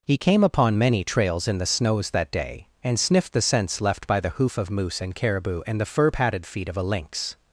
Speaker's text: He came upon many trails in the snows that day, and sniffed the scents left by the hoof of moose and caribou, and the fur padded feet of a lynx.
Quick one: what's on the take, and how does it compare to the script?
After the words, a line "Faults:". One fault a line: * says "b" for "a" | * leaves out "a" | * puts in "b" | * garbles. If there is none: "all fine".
He came upon many trails in the snows that day, and sniffed the scents left by the hoof of moose and caribou, and the fur padded feet of a lynx.
Faults:
all fine